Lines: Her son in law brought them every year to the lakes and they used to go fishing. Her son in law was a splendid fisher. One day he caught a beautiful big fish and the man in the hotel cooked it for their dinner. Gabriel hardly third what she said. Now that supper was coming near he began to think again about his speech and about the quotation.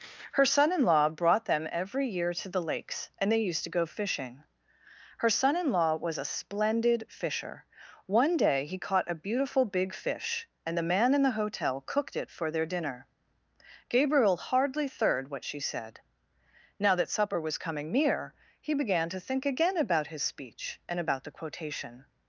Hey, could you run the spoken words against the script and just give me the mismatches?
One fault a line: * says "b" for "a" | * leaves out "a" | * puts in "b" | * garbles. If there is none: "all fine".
all fine